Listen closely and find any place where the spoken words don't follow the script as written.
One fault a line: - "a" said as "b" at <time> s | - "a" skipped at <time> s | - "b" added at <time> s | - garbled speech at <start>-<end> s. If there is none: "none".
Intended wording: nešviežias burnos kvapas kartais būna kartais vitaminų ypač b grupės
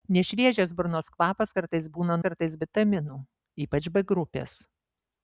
none